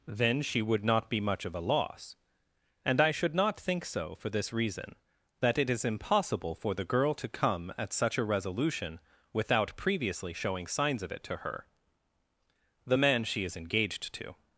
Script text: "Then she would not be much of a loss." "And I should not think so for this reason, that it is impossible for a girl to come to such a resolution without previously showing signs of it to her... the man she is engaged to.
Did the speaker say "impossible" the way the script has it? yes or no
yes